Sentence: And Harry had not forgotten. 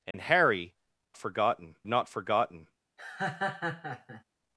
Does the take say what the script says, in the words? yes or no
no